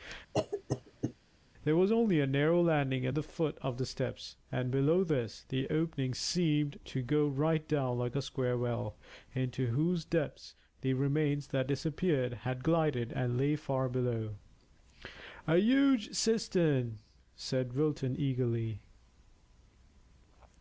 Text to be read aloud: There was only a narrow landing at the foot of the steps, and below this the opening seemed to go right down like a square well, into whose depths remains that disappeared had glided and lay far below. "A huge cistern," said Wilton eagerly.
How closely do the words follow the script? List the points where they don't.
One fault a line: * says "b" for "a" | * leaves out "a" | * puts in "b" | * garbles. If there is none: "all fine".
* puts in "the"